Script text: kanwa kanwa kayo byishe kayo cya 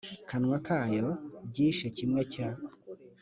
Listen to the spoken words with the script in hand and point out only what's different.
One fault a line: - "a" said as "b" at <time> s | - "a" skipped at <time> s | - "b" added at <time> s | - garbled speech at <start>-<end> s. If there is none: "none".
- "kanwa" skipped at 0.6 s
- "kayo" said as "kimwe" at 2.0 s